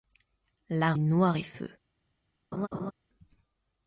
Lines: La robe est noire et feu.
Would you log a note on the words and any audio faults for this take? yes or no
yes